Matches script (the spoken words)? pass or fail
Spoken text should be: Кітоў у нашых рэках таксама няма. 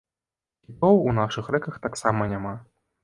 pass